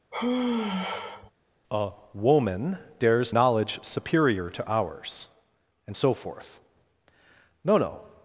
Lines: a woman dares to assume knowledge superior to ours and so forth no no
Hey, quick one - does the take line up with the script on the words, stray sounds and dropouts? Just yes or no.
no